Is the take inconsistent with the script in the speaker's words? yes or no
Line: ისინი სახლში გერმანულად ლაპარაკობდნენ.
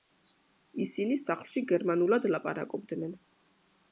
no